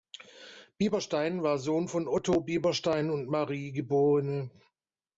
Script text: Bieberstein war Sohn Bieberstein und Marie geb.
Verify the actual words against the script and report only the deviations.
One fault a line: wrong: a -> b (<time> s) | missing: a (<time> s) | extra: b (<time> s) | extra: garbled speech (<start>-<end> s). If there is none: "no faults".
extra: von Otto (1.9 s)